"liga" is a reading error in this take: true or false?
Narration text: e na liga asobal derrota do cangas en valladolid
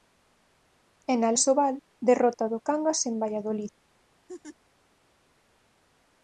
true